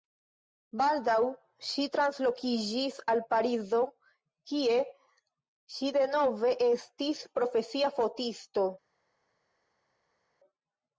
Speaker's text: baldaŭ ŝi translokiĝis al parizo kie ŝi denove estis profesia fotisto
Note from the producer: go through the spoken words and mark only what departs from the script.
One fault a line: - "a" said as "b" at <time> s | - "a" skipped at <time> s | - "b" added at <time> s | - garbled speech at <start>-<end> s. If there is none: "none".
none